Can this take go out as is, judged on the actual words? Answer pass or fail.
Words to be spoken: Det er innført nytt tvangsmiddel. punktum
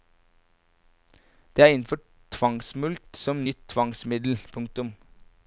fail